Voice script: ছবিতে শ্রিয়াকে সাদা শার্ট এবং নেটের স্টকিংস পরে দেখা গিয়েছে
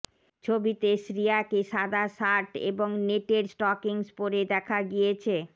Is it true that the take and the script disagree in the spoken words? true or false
false